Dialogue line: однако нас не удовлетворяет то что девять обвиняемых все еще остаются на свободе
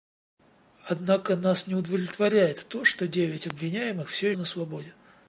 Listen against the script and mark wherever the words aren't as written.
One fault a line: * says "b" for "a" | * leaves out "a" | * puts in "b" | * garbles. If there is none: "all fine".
* leaves out "еще остаются"